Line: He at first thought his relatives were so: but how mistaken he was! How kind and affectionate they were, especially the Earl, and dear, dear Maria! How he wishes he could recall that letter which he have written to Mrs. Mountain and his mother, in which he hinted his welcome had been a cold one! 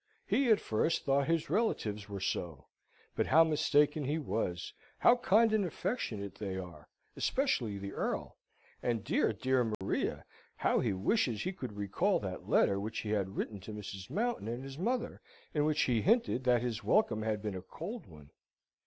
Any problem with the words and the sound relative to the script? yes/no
yes